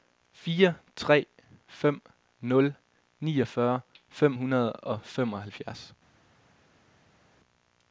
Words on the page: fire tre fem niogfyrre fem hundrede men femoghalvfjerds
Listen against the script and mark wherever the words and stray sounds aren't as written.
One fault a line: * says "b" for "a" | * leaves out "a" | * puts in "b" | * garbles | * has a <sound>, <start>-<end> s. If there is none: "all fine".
* puts in "nul"
* says "og" for "men"